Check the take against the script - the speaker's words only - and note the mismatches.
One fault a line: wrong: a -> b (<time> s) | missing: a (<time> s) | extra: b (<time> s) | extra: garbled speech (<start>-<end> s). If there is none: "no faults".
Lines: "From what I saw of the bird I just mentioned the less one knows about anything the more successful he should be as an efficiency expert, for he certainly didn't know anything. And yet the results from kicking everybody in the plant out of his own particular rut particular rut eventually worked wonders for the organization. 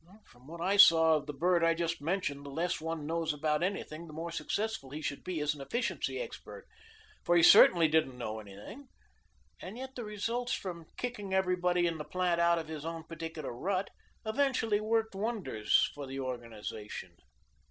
missing: particular rut (13.9 s)